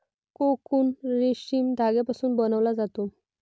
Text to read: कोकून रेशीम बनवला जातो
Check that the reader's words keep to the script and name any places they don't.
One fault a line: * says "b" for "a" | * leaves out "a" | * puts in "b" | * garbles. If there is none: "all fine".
* puts in "धाग्यापासून"